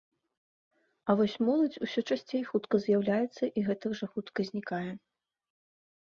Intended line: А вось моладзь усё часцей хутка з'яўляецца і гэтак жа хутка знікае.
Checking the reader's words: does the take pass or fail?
pass